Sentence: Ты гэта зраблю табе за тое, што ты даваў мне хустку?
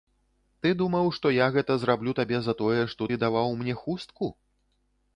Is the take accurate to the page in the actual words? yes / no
no